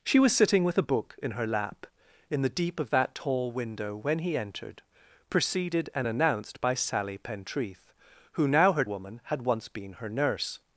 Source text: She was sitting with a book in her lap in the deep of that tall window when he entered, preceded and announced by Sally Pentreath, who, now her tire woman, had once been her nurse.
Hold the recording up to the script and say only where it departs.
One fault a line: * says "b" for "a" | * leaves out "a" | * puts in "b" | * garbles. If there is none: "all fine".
* leaves out "tire"